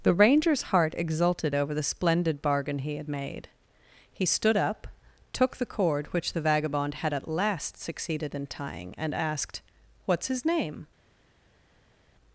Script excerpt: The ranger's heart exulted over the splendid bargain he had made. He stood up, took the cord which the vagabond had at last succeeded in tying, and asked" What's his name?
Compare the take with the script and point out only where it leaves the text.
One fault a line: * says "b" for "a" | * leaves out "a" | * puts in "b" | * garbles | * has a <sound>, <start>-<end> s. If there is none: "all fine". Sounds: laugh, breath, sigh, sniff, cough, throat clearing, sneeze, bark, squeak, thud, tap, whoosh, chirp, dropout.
all fine